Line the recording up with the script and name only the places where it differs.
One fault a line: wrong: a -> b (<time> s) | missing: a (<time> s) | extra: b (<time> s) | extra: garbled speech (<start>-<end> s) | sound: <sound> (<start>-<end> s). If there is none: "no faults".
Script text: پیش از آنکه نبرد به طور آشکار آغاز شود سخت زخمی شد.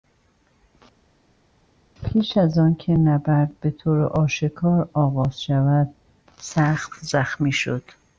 no faults